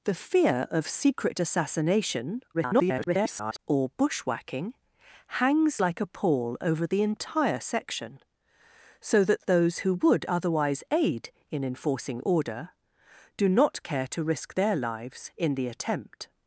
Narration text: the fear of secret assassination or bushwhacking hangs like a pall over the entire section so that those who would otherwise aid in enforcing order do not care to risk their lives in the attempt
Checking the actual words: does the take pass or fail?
fail